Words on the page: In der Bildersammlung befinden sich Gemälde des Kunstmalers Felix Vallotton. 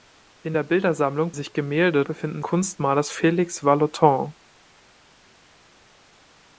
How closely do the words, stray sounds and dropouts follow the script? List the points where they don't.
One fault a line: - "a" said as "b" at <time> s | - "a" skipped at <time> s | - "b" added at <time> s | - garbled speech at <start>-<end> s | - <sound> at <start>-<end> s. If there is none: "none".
- "befinden" skipped at 1.3 s
- "des" said as "befinden" at 2.0 s